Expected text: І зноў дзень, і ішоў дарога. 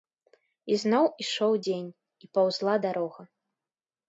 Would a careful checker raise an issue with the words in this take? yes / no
yes